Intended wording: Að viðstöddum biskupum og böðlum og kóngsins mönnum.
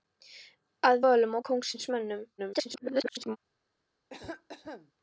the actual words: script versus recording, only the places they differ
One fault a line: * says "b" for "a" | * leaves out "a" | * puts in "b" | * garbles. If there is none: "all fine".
* leaves out "viðstöddum biskupum og"
* garbles